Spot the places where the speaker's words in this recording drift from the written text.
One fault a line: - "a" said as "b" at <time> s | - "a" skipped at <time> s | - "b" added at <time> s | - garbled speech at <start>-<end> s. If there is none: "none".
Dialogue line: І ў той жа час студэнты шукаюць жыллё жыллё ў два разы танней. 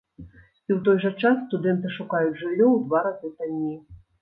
- "жыллё" skipped at 2.7 s